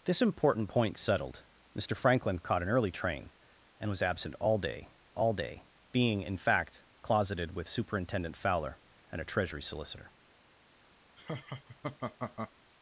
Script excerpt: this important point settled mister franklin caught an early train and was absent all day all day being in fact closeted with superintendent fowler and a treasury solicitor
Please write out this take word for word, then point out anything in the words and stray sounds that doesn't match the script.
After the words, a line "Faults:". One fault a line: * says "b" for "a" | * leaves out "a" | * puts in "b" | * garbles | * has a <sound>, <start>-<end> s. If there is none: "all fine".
this important point settled mister franklin caught an early train and was absent all day all day being in fact closeted with superintendent fowler and a treasury solicitor
Faults:
* has a laugh, 11.2-12.5 s